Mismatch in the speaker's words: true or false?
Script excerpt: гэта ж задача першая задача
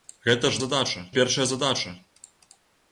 false